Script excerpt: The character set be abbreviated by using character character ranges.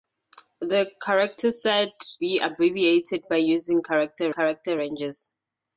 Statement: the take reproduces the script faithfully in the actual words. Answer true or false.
true